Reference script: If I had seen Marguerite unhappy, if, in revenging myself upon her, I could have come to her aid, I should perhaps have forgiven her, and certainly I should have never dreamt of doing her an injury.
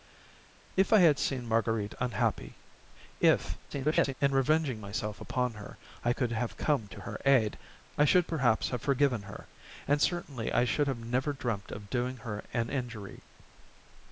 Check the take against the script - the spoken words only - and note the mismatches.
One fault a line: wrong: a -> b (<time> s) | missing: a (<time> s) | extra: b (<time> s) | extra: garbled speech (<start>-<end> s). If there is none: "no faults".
extra: garbled speech (3.7-4.1 s)